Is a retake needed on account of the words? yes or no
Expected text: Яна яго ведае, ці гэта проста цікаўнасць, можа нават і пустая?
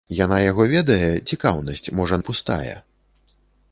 yes